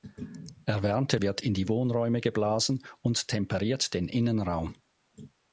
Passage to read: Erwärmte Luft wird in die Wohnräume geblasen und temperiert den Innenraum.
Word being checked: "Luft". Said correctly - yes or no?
no